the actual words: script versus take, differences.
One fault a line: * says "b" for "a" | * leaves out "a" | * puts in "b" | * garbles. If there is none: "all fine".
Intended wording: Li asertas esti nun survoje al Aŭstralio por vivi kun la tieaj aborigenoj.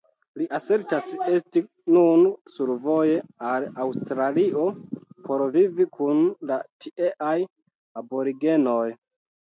all fine